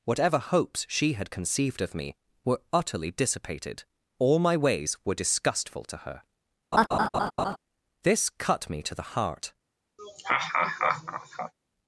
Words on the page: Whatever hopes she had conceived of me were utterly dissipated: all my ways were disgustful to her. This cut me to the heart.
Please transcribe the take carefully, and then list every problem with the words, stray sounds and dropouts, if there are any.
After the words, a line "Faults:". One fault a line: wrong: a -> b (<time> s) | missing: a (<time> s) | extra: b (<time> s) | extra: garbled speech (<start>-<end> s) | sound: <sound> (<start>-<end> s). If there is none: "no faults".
Whatever hopes she had conceived of me were utterly dissipated: all my ways were disgustful to her. This cut me to the heart.
Faults:
sound: laugh (6.7-7.6 s)
sound: laugh (10.0-11.5 s)